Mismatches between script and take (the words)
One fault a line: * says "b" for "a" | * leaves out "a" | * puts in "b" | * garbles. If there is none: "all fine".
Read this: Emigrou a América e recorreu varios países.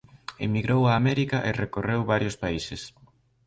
all fine